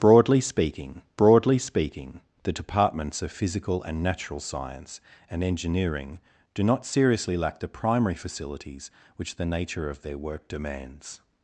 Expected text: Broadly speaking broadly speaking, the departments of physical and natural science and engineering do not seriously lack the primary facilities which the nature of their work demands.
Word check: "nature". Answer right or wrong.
right